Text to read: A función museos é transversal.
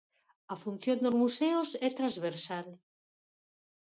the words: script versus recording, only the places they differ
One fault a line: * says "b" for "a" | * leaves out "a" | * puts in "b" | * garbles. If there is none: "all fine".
* puts in "dos"